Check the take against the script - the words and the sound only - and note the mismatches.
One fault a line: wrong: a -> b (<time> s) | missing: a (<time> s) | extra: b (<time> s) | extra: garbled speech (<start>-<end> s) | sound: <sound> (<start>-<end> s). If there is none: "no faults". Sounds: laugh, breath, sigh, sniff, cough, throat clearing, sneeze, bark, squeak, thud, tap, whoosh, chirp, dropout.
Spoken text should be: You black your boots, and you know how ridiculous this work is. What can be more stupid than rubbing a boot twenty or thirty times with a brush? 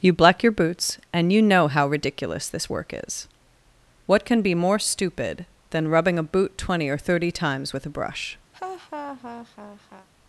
sound: laugh (8.5-10.1 s)